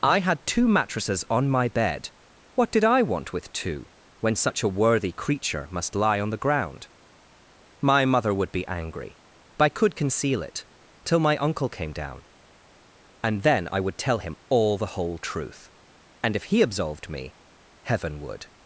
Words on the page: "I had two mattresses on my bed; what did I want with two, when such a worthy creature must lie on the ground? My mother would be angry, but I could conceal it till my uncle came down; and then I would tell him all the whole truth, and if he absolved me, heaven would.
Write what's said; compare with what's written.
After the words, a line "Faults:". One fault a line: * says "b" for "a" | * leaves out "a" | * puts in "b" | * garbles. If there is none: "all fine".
"I had two mattresses on my bed; what did I want with two, when such a worthy creature must lie on the ground? My mother would be angry, but I could conceal it till my uncle came down; and then I would tell him all the whole truth, and if he absolved me, heaven would.
Faults:
all fine